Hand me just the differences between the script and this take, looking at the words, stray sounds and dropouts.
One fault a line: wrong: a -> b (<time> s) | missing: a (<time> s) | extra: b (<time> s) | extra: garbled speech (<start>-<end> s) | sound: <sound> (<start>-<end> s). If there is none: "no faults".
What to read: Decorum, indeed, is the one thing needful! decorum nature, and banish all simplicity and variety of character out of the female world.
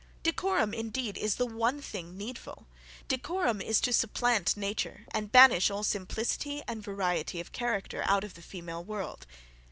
extra: is to supplant (3.6 s)